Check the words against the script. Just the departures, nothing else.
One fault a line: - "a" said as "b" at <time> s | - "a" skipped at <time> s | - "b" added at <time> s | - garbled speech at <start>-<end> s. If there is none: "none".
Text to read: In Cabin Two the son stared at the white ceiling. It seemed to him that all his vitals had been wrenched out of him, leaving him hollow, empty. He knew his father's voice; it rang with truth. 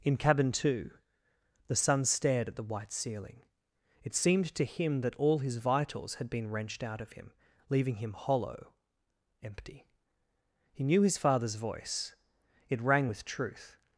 none